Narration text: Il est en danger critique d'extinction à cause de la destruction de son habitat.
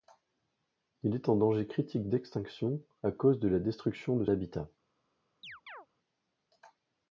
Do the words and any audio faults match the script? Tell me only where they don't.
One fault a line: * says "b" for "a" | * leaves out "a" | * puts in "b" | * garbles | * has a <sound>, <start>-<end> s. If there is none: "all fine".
* leaves out "son"
* has a chirp, 5.4-5.9 s